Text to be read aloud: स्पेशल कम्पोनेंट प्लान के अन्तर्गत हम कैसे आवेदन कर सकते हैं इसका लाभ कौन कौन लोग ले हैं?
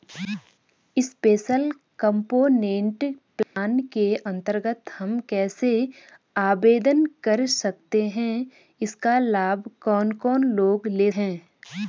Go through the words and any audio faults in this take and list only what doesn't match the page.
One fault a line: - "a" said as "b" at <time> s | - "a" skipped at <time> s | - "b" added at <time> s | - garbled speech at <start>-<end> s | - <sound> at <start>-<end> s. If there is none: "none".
- dropout at 3.4-3.6 s